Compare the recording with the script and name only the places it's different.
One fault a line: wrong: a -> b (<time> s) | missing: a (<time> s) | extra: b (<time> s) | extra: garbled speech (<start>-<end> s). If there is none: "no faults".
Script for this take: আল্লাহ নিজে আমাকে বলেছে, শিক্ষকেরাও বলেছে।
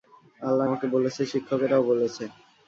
missing: নিজে (0.7 s)